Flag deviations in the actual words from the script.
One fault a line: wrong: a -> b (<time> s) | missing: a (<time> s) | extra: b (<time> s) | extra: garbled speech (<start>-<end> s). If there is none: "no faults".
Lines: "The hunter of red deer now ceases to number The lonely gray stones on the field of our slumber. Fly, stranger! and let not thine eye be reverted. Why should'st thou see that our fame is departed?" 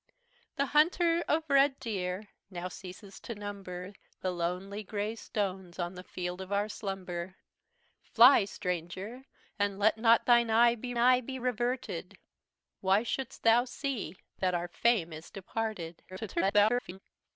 extra: eye be (11.0 s)
extra: garbled speech (16.1-17.0 s)